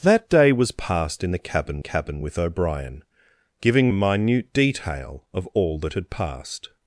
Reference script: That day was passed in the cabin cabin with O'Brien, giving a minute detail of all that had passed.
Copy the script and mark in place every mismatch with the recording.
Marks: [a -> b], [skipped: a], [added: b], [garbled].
That day was passed in the cabin cabin with O'Brien, giving a minute detail of all that had passed.